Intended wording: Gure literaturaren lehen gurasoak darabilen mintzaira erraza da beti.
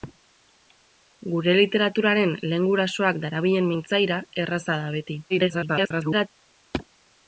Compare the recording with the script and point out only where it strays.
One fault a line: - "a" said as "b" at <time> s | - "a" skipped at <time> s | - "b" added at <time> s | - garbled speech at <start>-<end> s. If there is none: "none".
- garbled speech at 5.3-6.3 s